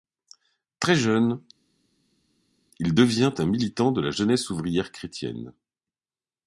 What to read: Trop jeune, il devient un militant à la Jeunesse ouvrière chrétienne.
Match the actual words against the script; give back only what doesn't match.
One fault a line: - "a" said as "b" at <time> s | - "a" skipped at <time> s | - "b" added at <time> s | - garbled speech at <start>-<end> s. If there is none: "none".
- "Trop" said as "Très" at 0.8 s
- "à" said as "de" at 3.9 s